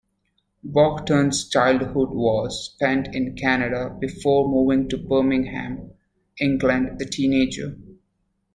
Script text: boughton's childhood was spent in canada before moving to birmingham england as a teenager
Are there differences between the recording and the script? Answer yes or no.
yes